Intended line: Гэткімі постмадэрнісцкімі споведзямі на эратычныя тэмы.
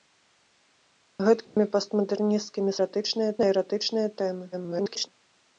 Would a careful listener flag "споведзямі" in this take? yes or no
yes